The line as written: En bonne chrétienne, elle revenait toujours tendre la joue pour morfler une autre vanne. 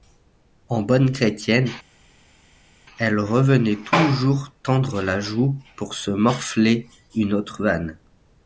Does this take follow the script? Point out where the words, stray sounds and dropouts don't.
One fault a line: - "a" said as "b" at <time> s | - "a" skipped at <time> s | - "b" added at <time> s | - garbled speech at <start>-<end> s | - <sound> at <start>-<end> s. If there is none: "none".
- "se" added at 5.9 s